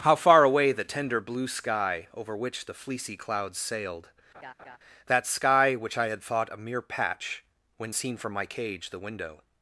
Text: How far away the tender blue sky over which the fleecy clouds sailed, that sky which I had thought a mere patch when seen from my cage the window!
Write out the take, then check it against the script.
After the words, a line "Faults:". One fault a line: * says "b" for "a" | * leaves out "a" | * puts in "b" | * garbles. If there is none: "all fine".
How far away the tender blue sky over which the fleecy clouds sailed, that sky which I had thought a mere patch when seen from my cage the window!
Faults:
all fine